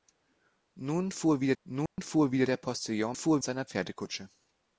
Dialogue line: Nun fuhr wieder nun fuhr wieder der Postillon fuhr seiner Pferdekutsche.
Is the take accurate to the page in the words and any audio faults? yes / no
no